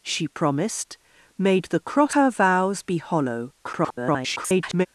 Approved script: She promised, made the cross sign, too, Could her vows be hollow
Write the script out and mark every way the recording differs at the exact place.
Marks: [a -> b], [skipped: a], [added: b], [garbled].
She promised, made the cross [skipped: sign, too, Could] her vows be hollow [garbled]